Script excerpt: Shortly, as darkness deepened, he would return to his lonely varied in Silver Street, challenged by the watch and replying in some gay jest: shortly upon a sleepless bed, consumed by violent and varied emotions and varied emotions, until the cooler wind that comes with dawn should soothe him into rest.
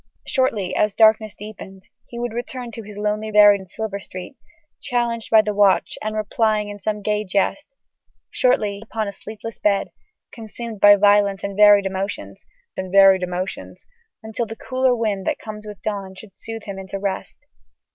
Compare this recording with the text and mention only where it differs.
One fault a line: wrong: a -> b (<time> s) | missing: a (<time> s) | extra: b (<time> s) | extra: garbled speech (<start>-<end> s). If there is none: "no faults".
no faults